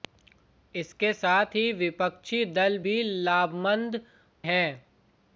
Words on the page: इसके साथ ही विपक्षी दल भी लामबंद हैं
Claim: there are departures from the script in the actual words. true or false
false